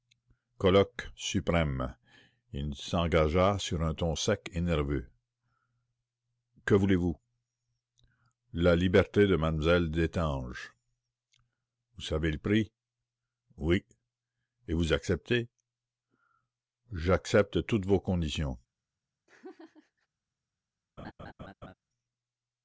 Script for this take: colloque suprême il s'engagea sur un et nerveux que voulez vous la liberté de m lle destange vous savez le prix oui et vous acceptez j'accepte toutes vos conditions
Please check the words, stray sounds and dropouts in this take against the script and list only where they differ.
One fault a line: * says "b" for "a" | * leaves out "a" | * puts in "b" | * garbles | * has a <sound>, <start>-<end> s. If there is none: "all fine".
* puts in "ton sec"
* has a laugh, 19.3-20.1 s
* has a laugh, 21.0-21.7 s